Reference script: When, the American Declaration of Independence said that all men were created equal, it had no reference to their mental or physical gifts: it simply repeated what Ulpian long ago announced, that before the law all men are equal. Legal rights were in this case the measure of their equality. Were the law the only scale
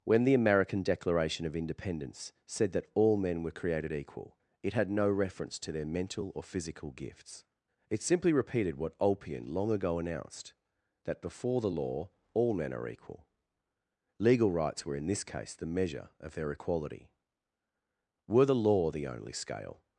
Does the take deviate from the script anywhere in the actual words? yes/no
no